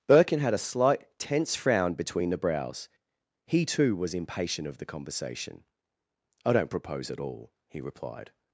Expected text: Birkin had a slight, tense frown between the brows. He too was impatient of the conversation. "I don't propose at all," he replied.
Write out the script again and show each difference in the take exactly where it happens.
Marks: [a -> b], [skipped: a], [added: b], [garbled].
Birkin had a slight, tense frown between the brows. He too was impatient of the conversation. "I don't propose at all," he replied.